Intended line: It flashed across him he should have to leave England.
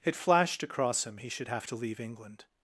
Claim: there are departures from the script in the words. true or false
false